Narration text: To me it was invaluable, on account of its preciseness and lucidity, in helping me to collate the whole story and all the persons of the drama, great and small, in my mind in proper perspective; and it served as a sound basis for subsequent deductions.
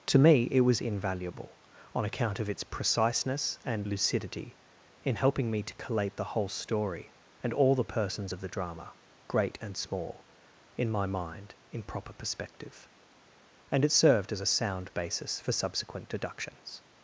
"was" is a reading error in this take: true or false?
false